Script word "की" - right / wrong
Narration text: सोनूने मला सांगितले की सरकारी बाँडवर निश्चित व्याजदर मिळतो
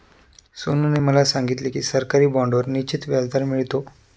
right